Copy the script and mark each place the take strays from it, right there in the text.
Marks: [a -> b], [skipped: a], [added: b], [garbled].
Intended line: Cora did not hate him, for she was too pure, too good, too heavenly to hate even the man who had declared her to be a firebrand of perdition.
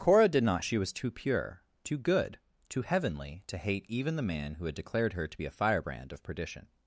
Cora did not [skipped: hate him, for] she was too pure, too good, too heavenly to hate even the man who had declared her to be a firebrand of perdition.